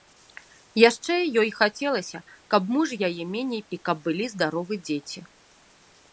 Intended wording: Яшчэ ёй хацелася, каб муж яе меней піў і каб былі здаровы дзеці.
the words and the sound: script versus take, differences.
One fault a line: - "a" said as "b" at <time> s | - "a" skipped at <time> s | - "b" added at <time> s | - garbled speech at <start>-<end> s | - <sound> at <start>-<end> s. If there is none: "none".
- "піў" skipped at 3.6 s